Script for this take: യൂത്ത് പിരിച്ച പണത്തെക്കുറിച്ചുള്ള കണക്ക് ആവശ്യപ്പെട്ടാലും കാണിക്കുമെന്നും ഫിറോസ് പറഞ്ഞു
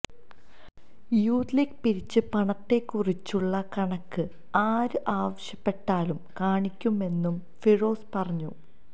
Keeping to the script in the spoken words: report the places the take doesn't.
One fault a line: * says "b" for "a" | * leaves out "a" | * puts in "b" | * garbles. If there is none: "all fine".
* puts in "ലീഗ്"
* puts in "ആര്"